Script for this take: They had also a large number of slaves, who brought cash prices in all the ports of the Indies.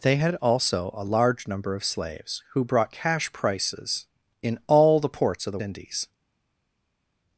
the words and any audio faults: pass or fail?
pass